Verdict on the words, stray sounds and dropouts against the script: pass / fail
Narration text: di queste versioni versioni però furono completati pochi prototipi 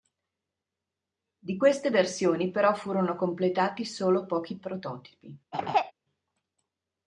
fail